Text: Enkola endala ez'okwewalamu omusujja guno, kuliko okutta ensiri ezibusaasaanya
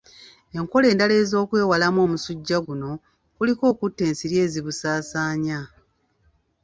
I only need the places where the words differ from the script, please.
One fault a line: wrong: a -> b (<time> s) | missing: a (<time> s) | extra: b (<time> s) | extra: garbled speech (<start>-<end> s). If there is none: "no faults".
no faults